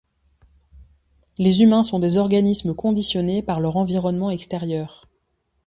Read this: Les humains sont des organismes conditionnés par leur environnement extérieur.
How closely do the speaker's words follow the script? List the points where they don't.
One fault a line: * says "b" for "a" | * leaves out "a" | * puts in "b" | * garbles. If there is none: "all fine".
all fine